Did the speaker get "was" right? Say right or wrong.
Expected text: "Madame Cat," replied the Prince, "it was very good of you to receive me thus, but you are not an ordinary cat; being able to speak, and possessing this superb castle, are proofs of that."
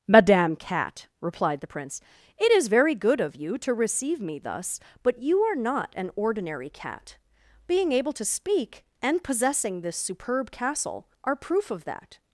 wrong